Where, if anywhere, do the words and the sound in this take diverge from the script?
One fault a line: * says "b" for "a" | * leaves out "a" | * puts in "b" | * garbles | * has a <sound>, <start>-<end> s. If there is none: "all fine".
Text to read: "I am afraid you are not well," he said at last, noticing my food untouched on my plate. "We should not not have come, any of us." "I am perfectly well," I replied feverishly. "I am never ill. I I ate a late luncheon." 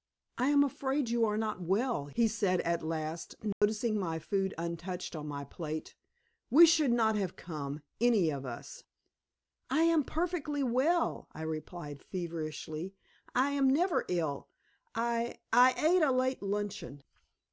* has a dropout, 3.5-3.6 s
* leaves out "not"